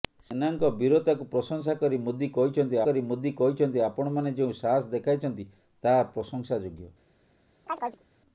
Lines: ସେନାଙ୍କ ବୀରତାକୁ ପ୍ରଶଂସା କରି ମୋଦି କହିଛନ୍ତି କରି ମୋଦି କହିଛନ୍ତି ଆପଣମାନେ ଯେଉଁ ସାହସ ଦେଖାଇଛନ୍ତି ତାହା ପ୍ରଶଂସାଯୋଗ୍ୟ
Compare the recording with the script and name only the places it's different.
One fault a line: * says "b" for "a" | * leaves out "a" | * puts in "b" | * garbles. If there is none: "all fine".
all fine